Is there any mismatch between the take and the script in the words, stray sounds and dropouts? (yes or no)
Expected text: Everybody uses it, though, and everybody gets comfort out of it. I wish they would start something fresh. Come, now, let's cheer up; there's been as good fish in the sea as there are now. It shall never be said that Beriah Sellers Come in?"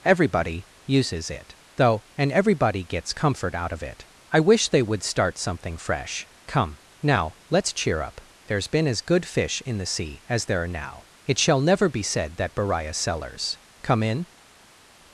no